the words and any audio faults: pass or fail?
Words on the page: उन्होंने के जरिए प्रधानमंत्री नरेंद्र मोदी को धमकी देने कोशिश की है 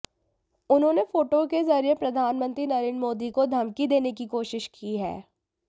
fail